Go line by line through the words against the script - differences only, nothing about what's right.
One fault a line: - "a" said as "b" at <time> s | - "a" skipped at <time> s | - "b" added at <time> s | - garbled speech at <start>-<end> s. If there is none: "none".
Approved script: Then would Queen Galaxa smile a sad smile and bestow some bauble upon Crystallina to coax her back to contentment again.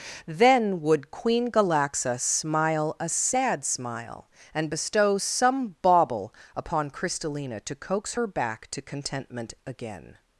none